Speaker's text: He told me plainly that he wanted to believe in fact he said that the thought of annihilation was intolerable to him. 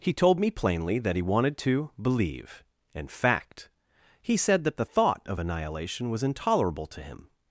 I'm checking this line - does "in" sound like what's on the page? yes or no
no